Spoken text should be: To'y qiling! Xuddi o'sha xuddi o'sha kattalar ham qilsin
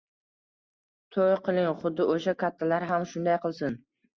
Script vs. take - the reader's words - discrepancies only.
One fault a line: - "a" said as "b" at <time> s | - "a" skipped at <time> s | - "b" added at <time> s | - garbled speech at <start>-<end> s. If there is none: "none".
- "xuddi o'sha" skipped at 2.4 s
- "shunday" added at 3.1 s